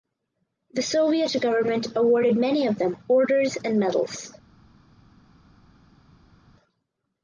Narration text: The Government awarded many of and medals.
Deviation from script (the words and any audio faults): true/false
true